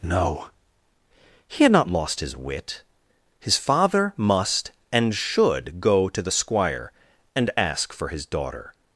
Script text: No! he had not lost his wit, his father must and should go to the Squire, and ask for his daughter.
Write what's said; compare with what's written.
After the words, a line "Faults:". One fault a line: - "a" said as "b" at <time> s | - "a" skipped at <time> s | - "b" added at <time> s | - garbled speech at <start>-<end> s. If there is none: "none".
No! he had not lost his wit, his father must and should go to the Squire, and ask for his daughter.
Faults:
none